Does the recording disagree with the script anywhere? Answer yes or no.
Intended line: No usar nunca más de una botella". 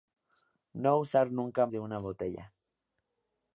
yes